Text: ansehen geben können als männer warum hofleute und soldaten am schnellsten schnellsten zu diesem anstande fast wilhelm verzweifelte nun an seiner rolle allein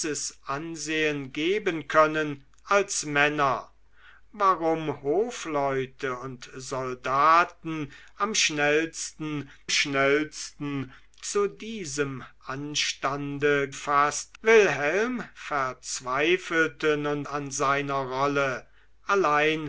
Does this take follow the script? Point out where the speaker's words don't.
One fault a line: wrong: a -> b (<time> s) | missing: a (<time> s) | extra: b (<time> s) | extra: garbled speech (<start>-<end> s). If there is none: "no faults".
no faults